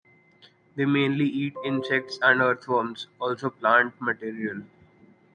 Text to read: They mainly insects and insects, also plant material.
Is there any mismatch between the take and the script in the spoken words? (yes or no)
yes